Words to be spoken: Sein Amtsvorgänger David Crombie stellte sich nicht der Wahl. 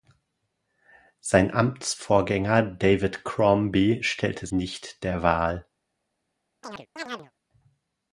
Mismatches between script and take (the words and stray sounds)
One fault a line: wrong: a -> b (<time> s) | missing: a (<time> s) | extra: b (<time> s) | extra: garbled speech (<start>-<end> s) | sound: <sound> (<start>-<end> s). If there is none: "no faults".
missing: sich (4.5 s)
sound: chirp (6.6-7.3 s)